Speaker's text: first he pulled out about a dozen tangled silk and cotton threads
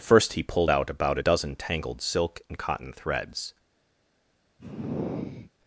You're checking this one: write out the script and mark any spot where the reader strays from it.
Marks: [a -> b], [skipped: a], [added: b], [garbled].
first he pulled out about a dozen tangled silk and cotton threads